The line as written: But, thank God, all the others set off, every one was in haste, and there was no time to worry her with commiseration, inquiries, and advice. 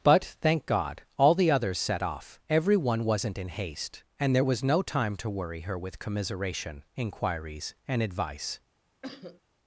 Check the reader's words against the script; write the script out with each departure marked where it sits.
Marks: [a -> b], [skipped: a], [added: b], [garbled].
But, thank God, all the others set off, every one [was -> wasn't] in haste, and there was no time to worry her with commiseration, inquiries, and advice.